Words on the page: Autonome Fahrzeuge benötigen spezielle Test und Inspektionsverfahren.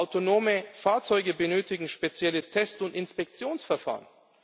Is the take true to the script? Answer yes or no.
yes